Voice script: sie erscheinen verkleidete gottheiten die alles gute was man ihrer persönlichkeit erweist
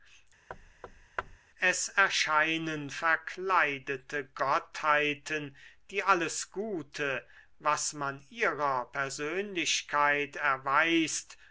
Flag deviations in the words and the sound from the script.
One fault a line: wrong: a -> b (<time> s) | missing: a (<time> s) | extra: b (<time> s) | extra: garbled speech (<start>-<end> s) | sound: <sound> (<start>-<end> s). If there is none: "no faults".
sound: thud (0.5-1.4 s)
wrong: sie -> es (1.6 s)